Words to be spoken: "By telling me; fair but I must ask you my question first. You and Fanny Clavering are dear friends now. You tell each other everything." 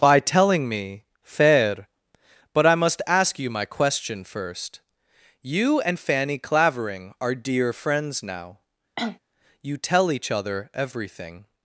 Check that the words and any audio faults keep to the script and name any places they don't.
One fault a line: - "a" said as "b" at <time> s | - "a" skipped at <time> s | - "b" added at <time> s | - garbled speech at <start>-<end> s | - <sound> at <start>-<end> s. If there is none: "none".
- cough at 9.0-9.2 s